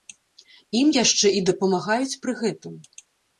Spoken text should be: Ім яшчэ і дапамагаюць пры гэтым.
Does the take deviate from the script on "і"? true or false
false